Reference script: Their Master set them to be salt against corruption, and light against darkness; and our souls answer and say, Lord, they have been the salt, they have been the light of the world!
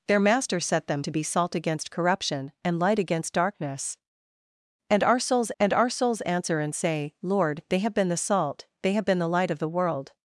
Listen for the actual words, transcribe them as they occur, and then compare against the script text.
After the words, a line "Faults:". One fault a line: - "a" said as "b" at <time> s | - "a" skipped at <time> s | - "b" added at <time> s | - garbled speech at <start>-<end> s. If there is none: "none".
Their Master set them to be salt against corruption, and light against darkness; and our souls and our souls answer and say, Lord, they have been the salt, they have been the light of the world!
Faults:
- "and our souls" added at 5.6 s